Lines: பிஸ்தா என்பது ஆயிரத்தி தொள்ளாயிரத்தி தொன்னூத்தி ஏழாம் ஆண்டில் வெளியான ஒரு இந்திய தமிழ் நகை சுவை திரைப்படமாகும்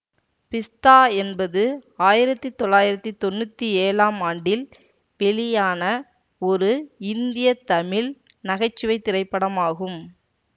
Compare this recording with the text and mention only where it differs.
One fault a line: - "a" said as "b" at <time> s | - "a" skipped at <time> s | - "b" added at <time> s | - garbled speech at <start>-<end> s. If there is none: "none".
none